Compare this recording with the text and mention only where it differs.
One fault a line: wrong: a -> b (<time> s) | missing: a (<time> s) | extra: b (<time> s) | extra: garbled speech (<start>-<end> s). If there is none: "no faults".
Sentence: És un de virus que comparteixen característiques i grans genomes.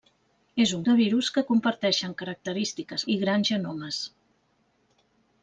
no faults